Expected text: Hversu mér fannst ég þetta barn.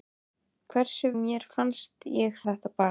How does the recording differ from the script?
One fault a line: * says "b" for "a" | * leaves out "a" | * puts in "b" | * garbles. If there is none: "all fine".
all fine